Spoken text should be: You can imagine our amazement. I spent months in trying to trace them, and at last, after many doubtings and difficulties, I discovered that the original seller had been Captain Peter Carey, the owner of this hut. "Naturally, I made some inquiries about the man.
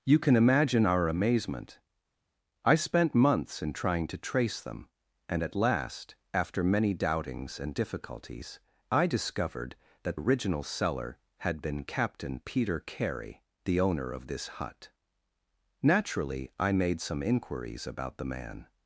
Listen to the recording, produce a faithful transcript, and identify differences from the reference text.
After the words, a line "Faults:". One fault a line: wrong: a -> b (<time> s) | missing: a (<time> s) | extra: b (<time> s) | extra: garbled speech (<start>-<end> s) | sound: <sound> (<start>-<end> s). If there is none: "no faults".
You can imagine our amazement. I spent months in trying to trace them, and at last, after many doubtings and difficulties, I discovered that original seller had been Captain Peter Carey, the owner of this hut. "Naturally, I made some inquiries about the man.
Faults:
missing: the (10.2 s)